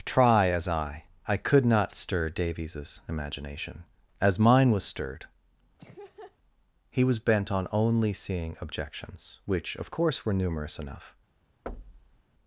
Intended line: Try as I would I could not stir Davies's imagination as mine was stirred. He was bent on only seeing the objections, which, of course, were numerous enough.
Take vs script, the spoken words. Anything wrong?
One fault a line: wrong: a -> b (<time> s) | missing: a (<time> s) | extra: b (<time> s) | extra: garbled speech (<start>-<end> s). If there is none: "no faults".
missing: would (1.1 s)
missing: the (8.6 s)